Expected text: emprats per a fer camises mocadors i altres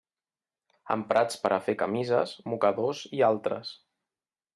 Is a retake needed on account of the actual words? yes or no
no